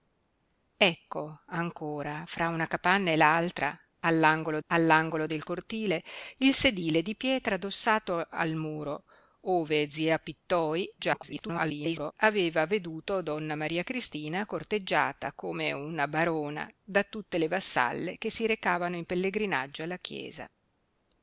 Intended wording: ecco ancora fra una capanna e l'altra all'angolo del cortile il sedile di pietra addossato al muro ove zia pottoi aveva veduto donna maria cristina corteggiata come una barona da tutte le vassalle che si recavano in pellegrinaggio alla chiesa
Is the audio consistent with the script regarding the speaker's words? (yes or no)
no